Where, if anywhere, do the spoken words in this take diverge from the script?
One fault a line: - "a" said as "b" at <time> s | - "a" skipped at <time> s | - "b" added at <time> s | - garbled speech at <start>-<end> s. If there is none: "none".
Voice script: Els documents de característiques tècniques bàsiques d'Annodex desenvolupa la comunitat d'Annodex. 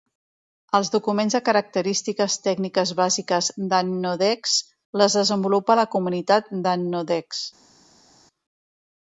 - "les" added at 5.0 s